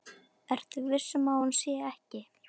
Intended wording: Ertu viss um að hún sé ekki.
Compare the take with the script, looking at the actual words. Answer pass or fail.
pass